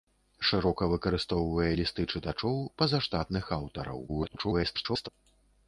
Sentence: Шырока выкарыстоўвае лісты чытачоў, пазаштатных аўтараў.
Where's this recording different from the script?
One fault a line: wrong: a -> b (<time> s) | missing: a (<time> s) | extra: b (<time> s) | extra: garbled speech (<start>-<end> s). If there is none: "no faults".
extra: garbled speech (4.1-5.1 s)